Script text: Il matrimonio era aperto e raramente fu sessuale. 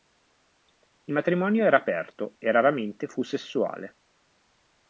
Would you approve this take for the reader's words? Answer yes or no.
yes